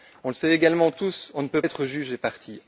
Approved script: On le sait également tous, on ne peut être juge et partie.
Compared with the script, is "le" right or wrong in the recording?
right